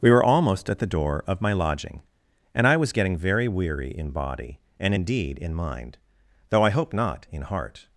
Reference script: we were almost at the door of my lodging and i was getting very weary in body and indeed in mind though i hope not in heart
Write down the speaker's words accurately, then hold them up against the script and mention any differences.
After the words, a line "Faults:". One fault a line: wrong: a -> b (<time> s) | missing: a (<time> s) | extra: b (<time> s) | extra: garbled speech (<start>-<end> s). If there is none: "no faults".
we were almost at the door of my lodging and i was getting very weary in body and indeed in mind though i hope not in heart
Faults:
no faults